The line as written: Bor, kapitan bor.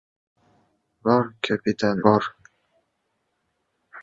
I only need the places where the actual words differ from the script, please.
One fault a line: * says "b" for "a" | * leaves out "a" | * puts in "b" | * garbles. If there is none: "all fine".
all fine